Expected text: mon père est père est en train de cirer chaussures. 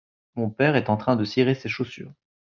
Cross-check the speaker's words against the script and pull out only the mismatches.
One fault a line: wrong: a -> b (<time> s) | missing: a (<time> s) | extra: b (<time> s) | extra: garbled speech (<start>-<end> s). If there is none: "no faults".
missing: père est (0.9 s)
extra: ses (1.6 s)